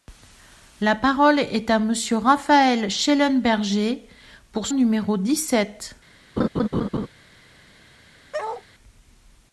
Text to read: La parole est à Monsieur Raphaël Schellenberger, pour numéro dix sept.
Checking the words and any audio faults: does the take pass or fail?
fail